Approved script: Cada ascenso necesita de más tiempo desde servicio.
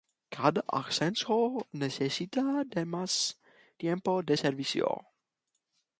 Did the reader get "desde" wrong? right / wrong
wrong